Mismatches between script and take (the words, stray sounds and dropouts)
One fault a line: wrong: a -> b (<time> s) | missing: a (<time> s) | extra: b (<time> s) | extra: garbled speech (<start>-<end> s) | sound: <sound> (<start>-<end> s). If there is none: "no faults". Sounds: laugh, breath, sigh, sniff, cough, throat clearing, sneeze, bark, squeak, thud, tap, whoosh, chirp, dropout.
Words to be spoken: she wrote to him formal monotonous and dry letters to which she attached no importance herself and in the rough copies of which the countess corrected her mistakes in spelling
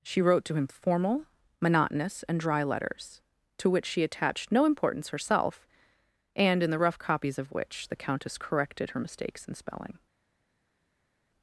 no faults